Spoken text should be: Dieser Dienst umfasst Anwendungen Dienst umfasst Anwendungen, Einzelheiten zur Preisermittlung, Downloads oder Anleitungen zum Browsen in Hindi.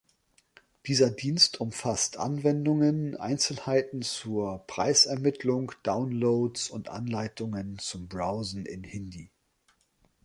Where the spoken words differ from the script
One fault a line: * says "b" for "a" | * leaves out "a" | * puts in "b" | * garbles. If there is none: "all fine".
* leaves out "Dienst umfasst Anwendungen"
* says "und" for "oder"